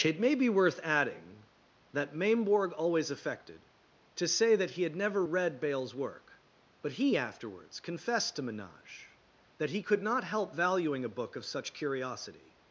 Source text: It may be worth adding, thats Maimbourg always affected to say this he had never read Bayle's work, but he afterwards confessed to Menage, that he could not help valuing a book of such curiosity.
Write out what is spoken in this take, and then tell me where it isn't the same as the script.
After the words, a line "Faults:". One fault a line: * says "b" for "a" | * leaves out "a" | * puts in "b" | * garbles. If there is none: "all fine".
It may be worth adding, that Maimbourg always affected to say that he had never read Bayle's work, but he afterwards confessed to Menage, that he could not help valuing a book of such curiosity.
Faults:
* says "that" for "thats"
* says "that" for "this"